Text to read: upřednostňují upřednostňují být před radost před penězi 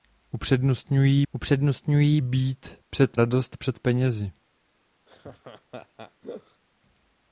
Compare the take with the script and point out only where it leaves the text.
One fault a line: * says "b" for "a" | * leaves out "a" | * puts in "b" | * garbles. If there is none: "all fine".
all fine